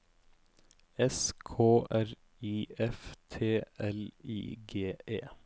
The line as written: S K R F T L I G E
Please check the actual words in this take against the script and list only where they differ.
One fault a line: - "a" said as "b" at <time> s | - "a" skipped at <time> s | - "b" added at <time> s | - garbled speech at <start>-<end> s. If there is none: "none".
- "I" added at 2.4 s